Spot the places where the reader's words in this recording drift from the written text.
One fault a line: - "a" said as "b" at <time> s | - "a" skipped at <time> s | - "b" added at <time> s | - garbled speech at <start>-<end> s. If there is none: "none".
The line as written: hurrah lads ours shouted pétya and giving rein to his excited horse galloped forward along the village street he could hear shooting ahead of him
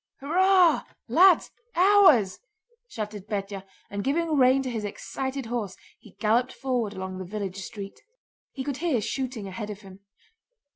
- "he" added at 6.0 s